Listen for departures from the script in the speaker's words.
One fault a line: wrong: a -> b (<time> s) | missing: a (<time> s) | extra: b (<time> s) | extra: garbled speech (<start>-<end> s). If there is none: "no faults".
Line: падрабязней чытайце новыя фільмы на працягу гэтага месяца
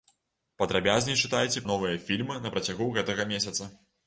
no faults